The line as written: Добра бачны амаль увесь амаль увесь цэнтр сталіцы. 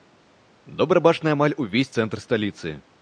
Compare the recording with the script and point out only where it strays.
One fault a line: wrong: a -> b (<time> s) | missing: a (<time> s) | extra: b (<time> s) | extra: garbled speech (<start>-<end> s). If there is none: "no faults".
missing: амаль увесь (1.9 s)